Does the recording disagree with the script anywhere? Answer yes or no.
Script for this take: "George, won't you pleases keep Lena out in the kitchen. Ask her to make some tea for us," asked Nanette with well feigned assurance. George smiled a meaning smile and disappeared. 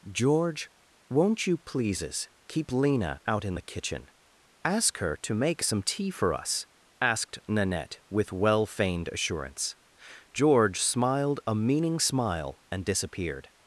no